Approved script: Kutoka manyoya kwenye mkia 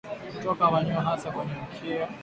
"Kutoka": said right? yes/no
yes